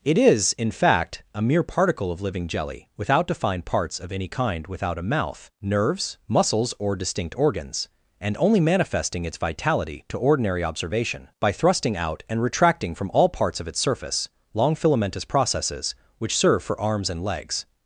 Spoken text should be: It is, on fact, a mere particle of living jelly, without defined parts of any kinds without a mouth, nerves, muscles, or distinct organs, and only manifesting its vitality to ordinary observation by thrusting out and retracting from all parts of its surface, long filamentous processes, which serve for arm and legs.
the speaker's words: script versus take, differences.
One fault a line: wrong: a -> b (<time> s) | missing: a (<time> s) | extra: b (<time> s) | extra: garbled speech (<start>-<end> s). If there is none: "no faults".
wrong: on -> in (0.5 s)
wrong: kinds -> kind (4.3 s)
wrong: arm -> arms (16.8 s)